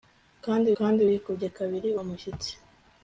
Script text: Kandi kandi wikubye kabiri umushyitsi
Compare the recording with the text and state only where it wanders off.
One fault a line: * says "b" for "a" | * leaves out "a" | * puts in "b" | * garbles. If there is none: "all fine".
all fine